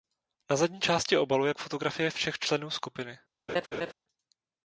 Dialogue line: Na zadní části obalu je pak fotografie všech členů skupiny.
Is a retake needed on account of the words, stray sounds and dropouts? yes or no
yes